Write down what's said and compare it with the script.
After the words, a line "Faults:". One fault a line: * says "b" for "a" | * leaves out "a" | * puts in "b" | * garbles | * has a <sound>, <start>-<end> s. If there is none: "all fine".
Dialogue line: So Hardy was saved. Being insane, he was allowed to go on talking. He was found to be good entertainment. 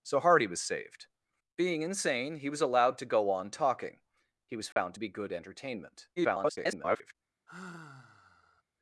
So Hardy was saved. Being insane, he was allowed to go on talking. He was found to be good entertainment. [garbled]
Faults:
* has a dropout, 4.7-4.8 s
* garbles
* has a sigh, 7.5-8.6 s